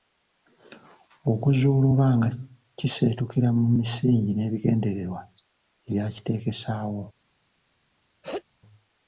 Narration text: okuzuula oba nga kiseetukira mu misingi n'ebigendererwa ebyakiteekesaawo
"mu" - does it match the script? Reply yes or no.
yes